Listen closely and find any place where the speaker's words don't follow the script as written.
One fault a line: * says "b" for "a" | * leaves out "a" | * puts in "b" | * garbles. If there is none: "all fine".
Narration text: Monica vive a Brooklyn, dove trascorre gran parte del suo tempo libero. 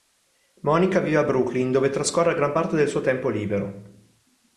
all fine